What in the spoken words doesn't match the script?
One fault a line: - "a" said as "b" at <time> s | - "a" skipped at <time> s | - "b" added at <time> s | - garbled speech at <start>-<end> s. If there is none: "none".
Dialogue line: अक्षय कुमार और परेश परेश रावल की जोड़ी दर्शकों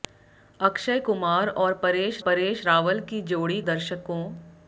none